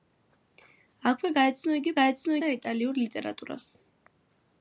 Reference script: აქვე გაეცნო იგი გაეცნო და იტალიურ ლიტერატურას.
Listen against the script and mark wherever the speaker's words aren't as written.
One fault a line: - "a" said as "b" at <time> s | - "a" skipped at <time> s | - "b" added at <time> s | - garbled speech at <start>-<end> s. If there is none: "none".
none